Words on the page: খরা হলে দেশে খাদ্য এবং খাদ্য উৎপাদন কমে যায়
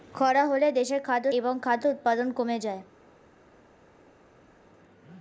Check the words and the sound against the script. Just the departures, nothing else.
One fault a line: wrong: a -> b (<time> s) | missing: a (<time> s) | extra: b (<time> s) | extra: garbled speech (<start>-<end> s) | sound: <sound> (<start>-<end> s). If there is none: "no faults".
no faults